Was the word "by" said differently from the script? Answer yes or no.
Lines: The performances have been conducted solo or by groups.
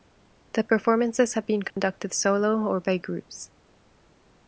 no